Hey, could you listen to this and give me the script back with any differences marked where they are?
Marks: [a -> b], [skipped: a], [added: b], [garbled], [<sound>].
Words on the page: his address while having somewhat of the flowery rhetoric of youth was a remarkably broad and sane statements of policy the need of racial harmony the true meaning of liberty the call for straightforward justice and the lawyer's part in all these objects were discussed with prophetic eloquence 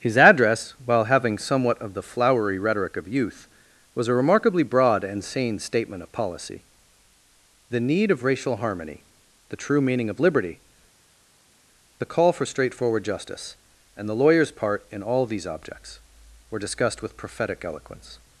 his address while having somewhat of the flowery rhetoric of youth was a remarkably broad and sane [statements -> statement] of policy the need of racial harmony the true meaning of liberty the call for straightforward justice and the lawyer's part in all these objects were discussed with prophetic eloquence